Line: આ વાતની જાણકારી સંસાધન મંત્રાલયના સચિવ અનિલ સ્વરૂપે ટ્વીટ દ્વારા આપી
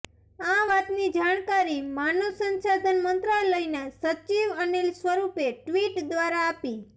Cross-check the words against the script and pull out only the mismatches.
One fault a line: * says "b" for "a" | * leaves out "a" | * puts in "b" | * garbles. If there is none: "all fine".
* puts in "માનવ"